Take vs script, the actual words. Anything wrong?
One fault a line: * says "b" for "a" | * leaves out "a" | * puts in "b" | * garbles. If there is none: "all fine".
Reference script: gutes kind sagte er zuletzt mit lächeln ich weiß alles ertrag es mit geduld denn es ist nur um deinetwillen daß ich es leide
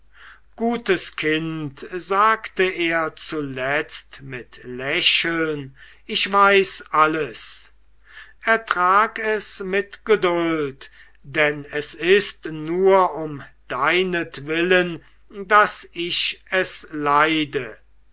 all fine